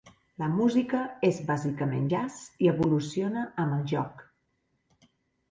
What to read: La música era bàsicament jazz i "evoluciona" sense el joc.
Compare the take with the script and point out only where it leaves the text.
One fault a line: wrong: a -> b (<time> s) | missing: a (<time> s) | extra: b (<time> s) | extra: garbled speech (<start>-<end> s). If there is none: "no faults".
wrong: era -> és (1.3 s)
wrong: sense -> amb (3.7 s)